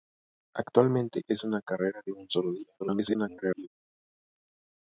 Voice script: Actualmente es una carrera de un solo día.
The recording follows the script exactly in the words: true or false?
false